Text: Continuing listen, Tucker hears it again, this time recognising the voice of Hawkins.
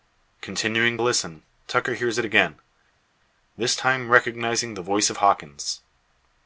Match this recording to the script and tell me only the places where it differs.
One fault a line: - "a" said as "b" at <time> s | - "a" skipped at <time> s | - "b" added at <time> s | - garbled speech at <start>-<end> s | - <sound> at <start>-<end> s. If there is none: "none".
none